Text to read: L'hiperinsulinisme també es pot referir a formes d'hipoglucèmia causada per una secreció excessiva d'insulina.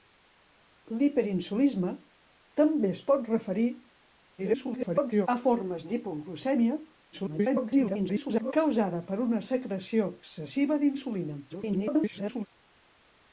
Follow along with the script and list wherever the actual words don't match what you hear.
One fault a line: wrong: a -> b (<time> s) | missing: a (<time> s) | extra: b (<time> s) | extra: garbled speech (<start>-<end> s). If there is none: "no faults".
extra: garbled speech (4.4-5.3 s)
extra: garbled speech (7.1-8.5 s)
extra: garbled speech (11.5-12.5 s)